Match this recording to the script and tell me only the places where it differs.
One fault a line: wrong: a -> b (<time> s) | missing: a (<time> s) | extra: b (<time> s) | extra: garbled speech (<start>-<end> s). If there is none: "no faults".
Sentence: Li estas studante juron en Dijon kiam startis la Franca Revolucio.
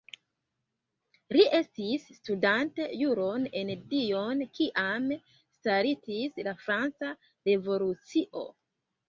wrong: estas -> estis (1.6 s)